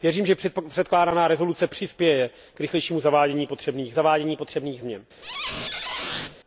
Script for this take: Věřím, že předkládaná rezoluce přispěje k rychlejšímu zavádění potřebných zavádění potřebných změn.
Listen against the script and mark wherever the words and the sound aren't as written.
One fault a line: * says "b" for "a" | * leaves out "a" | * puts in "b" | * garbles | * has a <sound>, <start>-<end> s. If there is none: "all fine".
* has a squeak, 5.2-6.4 s